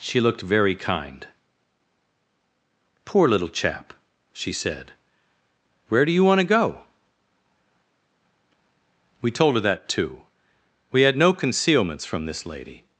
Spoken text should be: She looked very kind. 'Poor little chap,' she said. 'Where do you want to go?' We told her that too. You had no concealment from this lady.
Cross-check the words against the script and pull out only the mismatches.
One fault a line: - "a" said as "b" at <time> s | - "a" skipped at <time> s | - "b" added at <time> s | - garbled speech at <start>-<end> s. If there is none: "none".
- "You" said as "We" at 10.9 s
- "concealment" said as "concealments" at 11.3 s